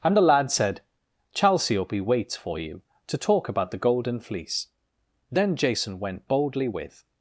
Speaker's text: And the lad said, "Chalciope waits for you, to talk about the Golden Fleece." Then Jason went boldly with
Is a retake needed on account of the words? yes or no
no